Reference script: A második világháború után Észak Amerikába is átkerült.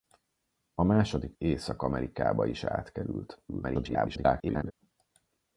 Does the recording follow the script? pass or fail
fail